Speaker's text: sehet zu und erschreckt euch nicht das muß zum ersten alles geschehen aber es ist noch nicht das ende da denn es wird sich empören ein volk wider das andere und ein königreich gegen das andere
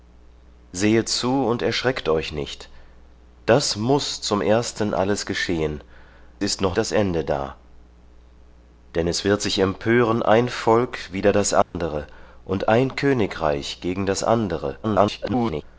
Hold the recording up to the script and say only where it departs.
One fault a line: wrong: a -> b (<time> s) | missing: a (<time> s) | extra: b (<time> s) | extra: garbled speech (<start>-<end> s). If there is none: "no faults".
missing: aber es (5.8 s)
missing: nicht (6.8 s)
extra: garbled speech (14.8-15.6 s)